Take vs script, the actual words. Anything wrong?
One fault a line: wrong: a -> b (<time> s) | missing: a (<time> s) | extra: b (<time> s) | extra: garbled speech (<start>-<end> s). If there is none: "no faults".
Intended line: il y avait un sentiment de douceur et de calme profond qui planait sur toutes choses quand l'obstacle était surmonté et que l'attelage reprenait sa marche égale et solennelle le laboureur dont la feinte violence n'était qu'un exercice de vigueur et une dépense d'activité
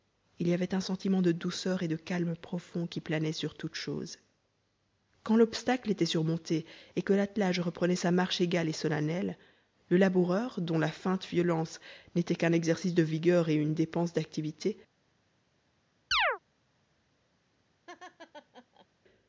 no faults